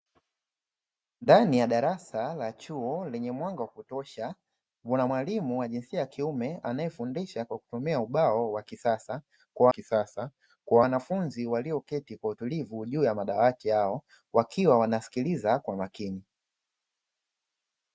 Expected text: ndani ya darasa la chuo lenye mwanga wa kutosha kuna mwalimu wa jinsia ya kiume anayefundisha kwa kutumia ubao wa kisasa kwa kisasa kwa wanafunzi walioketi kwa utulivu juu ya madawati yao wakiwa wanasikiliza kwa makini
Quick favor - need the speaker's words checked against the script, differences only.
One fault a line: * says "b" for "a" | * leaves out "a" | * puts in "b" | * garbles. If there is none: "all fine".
all fine